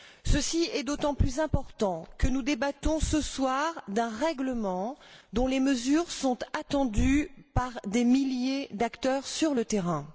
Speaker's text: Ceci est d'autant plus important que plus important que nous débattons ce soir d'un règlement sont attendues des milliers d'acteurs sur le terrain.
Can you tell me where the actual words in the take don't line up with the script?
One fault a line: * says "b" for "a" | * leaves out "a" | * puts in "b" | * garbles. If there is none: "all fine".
* leaves out "plus important que"
* puts in "dont les mesures"
* puts in "par"